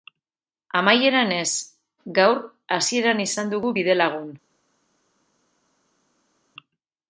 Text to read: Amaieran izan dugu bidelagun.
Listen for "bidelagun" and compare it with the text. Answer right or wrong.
right